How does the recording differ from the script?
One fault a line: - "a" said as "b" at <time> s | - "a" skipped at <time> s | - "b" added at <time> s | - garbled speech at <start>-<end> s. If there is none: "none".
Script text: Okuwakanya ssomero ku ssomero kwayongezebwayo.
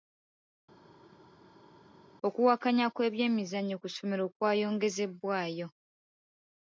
- "ssomero" said as "kw'ebyemizannyo" at 2.9 s